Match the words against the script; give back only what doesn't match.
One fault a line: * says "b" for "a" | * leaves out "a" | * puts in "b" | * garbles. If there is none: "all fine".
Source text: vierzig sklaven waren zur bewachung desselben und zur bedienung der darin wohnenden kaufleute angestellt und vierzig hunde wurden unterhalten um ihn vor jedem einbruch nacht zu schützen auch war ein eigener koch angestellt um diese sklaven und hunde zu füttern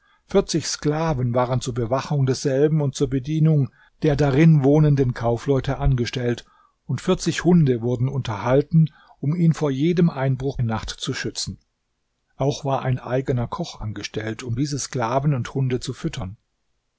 all fine